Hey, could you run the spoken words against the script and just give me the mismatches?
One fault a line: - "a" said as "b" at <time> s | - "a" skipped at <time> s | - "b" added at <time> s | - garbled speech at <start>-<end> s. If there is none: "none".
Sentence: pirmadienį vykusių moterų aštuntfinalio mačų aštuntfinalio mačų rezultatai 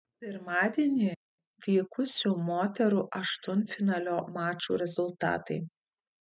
- "aštuntfinalio mačų" skipped at 4.8 s